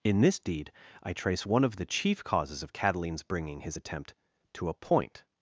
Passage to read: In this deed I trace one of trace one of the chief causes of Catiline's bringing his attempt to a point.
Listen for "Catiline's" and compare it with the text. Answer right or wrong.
right